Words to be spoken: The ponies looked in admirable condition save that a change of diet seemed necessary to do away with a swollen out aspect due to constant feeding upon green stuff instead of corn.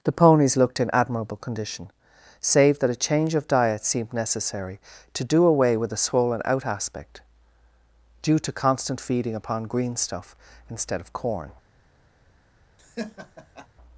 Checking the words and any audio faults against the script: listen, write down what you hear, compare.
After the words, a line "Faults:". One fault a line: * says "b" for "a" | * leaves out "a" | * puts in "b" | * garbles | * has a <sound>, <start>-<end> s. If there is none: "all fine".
The ponies looked in admirable condition save that a change of diet seemed necessary to do away with a swollen out aspect due to constant feeding upon green stuff instead of corn.
Faults:
* has a laugh, 12.8-13.7 s